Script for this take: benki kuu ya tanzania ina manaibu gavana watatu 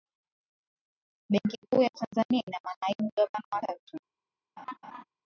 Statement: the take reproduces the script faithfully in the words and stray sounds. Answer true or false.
false